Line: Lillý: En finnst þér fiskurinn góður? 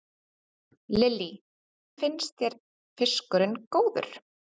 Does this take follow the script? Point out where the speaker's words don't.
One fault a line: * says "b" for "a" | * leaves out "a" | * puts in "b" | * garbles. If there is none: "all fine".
* leaves out "En"